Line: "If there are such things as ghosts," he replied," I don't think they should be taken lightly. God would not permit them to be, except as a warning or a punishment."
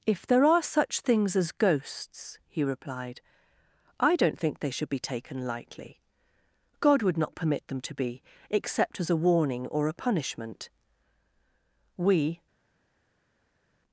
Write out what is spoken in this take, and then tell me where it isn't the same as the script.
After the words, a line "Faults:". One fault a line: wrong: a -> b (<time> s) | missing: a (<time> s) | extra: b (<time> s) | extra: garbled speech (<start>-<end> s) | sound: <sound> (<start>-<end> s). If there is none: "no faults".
"If there are such things as ghosts," he replied," I don't think they should be taken lightly. God would not permit them to be, except as a warning or a punishment." We
Faults:
extra: We (12.0 s)